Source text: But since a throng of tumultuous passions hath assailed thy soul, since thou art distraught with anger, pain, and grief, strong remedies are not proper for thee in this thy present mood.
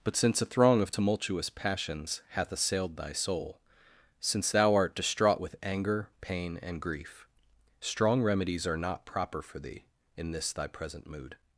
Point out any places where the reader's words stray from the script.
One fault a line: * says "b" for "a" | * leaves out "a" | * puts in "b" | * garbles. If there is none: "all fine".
all fine